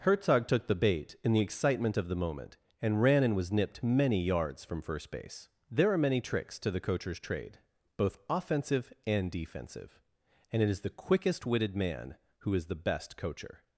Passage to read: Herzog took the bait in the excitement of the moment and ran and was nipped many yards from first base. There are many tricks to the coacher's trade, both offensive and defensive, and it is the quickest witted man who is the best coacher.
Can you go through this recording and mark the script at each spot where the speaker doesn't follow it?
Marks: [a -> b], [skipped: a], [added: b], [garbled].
Herzog took the bait in the excitement of the moment and ran and was nipped many yards from first base. There are many tricks to the coacher's trade, both offensive and defensive, and it is the quickest witted man who is the best coacher.